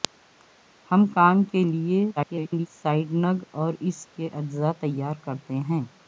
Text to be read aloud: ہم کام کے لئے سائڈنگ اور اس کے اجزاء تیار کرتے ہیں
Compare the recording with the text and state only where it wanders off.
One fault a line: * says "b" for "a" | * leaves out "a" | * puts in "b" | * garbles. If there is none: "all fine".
* garbles